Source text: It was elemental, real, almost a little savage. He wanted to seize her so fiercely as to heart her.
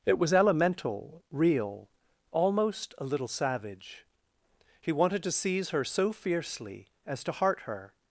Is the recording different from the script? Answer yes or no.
no